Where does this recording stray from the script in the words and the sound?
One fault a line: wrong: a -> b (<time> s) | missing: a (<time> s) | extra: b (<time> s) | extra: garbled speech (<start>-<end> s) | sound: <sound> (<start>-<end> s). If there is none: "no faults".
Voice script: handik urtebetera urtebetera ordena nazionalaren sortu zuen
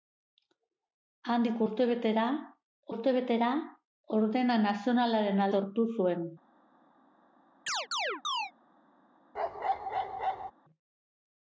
sound: chirp (7.7-8.5 s)
sound: bark (9.3-10.5 s)